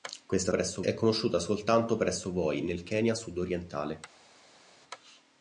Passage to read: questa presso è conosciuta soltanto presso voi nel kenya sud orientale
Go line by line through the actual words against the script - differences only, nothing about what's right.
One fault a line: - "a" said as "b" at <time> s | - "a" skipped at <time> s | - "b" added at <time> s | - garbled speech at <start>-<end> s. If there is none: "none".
none